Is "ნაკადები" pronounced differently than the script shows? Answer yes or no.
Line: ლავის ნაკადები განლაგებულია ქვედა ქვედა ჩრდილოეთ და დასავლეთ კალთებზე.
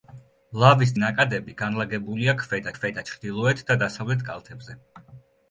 no